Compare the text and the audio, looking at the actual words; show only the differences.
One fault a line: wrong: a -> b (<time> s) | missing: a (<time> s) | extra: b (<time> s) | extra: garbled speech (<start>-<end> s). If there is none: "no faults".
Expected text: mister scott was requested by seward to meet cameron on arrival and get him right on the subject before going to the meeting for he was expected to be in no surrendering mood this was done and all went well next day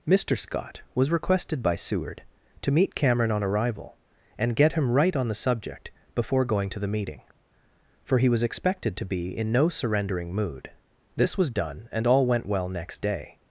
no faults